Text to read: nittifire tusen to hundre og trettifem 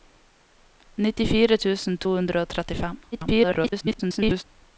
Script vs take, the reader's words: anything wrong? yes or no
yes